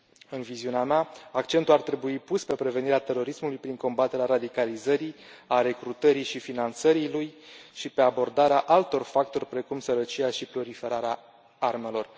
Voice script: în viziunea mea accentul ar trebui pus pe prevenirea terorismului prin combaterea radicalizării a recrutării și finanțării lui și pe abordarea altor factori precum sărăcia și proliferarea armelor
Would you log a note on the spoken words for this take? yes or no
no